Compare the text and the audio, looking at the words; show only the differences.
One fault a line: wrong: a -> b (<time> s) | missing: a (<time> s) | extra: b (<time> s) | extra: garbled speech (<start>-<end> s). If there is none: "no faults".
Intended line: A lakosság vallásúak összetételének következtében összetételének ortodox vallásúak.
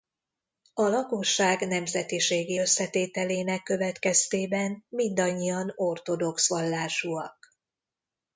wrong: vallásúak -> nemzetiségi (1.7 s)
wrong: összetételének -> mindannyian (4.9 s)